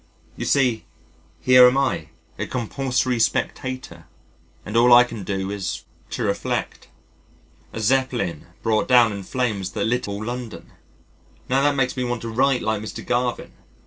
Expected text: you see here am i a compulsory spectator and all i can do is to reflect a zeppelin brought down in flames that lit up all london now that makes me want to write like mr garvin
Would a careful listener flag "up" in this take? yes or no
yes